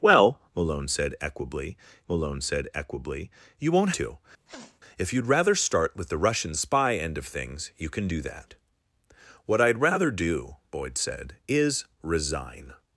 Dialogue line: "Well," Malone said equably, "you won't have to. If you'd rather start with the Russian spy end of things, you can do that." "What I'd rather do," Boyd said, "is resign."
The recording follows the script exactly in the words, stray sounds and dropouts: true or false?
false